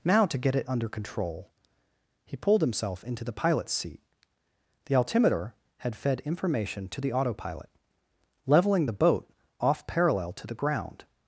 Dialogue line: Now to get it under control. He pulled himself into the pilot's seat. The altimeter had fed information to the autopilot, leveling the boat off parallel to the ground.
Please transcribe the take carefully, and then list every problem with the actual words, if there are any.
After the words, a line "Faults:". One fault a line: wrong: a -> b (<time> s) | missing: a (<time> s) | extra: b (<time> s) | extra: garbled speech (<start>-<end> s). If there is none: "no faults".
Now to get it under control. He pulled himself into the pilot's seat. The altimeter had fed information to the autopilot, leveling the boat off parallel to the ground.
Faults:
no faults